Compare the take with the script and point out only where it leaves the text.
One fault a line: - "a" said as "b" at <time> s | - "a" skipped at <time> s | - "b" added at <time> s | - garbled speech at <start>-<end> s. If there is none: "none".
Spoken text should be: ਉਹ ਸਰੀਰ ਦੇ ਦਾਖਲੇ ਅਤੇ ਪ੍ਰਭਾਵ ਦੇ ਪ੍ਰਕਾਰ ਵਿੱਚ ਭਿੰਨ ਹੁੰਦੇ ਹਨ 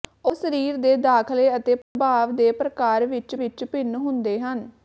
- "ਵਿੱਚ" added at 3.4 s